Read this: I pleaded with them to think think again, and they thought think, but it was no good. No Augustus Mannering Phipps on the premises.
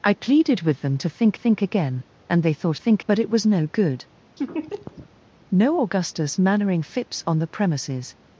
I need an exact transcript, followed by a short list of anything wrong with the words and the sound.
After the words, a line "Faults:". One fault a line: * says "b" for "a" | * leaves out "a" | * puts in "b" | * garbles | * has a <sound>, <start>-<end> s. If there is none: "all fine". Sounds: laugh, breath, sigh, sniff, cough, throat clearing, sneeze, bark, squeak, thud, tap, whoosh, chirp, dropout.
I pleaded with them to think think again, and they thought think, but it was no good. No Augustus Mannering Phipps on the premises.
Faults:
* has a laugh, 4.4-5.1 s